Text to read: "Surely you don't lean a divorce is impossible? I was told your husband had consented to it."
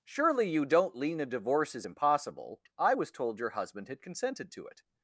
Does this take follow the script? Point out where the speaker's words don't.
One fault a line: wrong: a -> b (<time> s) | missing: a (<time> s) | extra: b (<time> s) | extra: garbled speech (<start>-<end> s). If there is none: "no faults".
no faults